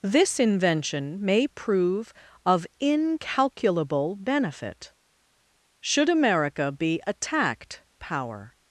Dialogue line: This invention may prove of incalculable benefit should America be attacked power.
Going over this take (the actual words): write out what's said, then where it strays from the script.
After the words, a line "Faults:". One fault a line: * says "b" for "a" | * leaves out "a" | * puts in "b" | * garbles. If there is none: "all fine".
This invention may prove of incalculable benefit should America be attacked power.
Faults:
all fine